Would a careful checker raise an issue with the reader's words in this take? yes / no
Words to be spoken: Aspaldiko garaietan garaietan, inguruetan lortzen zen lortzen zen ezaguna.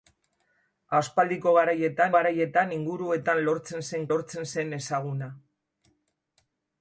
no